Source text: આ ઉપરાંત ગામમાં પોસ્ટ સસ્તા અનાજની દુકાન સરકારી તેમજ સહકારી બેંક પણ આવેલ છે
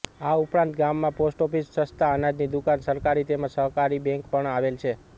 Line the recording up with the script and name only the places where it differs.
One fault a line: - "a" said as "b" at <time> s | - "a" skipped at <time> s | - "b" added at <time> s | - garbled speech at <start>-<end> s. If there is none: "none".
- "ઓફિસ" added at 1.5 s